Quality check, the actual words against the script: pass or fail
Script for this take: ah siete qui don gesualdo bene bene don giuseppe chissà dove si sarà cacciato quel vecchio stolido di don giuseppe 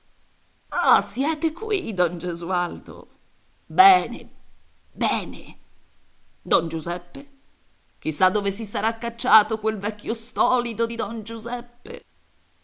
pass